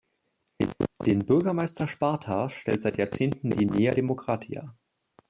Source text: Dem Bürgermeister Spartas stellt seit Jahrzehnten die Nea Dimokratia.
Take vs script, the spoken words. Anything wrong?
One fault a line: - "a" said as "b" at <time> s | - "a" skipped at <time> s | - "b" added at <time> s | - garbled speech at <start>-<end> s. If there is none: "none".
- "Dem" said as "Den" at 1.1 s